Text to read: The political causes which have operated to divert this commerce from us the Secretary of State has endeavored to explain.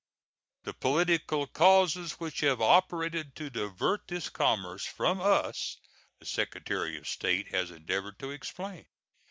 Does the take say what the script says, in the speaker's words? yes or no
yes